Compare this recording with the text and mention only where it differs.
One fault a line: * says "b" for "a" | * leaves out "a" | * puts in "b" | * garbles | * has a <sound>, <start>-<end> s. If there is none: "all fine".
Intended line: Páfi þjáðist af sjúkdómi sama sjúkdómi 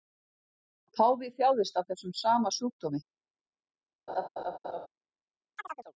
* says "þessum" for "sjúkdómi"
* has a laugh, 4.1-4.9 s
* has a chirp, 5.6-5.9 s